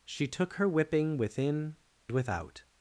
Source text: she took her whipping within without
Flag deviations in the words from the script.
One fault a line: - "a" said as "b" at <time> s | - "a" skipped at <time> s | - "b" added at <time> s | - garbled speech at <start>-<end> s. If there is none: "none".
none